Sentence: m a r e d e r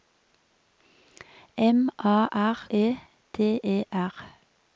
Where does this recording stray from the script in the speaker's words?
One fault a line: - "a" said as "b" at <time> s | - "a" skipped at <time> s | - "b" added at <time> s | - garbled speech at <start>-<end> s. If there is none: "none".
none